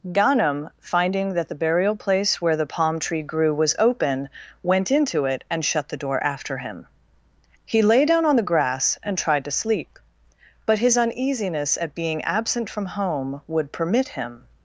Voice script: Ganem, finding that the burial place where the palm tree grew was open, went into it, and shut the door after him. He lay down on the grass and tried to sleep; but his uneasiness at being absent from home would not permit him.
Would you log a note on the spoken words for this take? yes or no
yes